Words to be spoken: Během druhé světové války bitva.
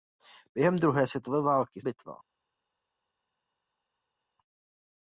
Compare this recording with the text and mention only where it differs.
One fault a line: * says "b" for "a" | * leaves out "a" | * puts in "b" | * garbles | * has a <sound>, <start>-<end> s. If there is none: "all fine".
all fine